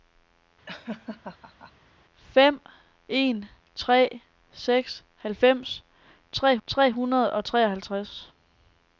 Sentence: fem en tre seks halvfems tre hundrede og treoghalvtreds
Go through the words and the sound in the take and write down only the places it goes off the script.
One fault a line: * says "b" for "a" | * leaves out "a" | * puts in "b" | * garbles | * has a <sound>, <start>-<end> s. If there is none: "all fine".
* has a laugh, 0.7-1.7 s
* puts in "tre"